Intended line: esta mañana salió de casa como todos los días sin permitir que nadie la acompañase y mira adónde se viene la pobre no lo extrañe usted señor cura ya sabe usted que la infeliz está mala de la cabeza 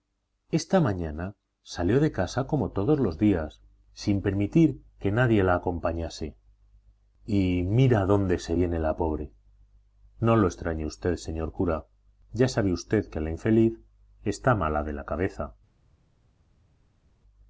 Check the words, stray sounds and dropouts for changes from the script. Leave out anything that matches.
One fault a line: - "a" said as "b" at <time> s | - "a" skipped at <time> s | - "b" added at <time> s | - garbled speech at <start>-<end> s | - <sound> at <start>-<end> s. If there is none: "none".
none